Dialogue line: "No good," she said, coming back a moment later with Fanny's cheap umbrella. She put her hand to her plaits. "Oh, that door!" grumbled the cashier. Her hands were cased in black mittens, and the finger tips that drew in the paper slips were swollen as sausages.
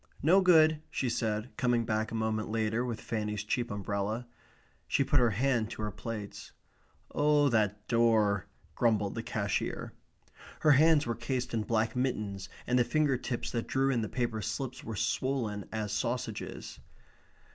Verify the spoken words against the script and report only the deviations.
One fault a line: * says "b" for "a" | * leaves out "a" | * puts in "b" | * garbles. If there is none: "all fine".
all fine